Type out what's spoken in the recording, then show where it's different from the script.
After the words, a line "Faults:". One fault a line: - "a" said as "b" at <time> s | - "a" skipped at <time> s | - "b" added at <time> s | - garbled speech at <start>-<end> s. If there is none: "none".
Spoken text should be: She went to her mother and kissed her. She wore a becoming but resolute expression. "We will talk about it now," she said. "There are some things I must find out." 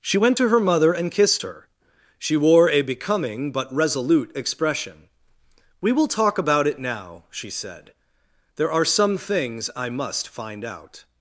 She went to her mother and kissed her. She wore a becoming but resolute expression. "We will talk about it now," she said. "There are some things I must find out."
Faults:
none